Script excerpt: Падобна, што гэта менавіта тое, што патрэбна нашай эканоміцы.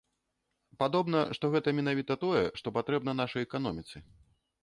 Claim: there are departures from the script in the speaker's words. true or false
false